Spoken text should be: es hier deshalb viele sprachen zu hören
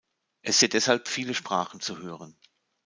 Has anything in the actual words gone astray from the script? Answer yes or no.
no